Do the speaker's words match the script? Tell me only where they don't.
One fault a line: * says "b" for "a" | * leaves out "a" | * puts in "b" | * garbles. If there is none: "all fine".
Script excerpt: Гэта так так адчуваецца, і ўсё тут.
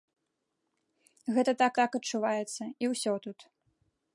all fine